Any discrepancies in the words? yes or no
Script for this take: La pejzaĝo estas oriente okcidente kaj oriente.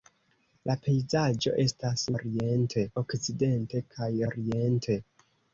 no